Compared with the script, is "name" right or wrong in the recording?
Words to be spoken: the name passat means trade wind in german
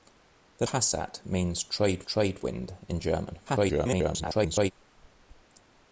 wrong